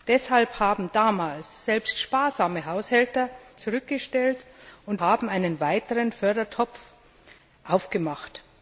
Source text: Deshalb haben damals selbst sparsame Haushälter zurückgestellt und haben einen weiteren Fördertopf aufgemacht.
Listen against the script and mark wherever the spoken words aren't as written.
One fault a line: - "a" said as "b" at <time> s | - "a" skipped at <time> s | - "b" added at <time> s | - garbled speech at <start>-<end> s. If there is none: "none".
none